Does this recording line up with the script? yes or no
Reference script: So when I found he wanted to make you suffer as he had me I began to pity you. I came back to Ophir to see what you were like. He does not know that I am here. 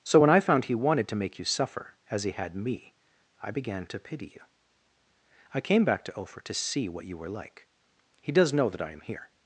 no